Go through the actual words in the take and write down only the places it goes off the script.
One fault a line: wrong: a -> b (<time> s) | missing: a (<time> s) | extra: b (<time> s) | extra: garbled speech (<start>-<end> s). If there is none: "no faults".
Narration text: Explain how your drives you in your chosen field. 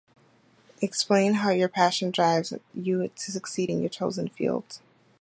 extra: passion (1.7 s)
extra: to succeed (3.1 s)